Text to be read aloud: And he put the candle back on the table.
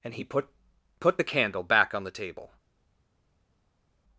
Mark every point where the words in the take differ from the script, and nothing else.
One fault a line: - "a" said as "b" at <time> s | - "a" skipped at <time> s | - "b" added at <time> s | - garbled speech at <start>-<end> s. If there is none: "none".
- "put" added at 1.0 s